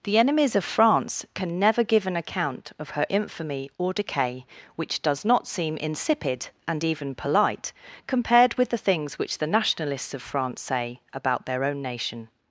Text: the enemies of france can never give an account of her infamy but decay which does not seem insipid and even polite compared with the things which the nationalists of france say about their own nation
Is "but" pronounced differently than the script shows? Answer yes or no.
yes